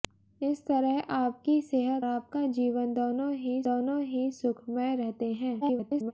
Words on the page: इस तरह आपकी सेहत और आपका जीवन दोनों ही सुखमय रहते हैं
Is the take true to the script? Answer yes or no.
no